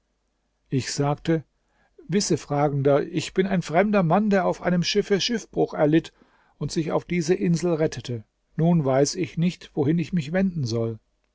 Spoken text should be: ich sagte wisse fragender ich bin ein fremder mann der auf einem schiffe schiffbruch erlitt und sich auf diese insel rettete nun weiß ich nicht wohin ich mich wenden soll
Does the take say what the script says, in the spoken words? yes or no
yes